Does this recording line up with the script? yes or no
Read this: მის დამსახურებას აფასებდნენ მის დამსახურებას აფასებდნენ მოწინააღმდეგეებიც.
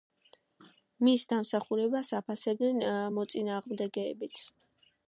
no